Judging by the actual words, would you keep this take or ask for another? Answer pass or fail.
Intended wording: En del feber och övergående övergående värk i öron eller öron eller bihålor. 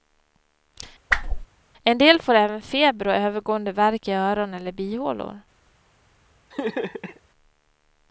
fail